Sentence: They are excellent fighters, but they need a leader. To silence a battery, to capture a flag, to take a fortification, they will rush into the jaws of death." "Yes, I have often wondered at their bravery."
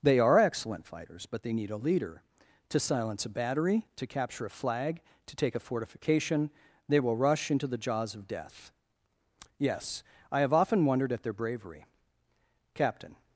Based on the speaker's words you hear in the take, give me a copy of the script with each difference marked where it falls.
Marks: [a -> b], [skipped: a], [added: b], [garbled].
They are excellent fighters, but they need a leader. To silence a battery, to capture a flag, to take a fortification, they will rush into the jaws of death." "Yes, I have often wondered at their bravery." [added: Captain]